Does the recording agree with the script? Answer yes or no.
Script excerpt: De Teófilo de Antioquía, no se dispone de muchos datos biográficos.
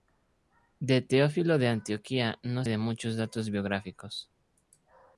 no